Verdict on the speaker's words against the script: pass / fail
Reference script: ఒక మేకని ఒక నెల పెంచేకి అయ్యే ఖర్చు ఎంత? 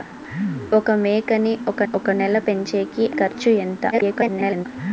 fail